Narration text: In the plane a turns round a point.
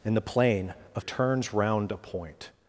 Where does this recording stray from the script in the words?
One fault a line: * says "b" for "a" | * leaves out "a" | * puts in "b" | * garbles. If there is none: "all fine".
all fine